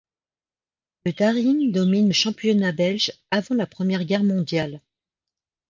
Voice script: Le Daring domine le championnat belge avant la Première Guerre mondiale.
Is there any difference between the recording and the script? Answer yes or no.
no